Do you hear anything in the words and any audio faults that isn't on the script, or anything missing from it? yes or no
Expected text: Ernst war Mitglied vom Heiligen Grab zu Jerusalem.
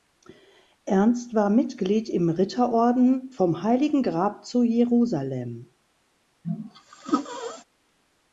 yes